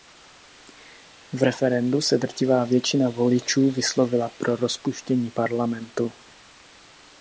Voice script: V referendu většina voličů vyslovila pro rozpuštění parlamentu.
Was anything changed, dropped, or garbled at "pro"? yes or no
no